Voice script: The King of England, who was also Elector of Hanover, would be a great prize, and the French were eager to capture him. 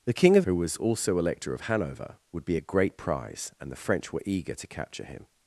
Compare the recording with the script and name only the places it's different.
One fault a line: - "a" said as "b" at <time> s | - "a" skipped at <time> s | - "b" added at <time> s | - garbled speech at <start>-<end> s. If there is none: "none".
- "England" skipped at 0.5 s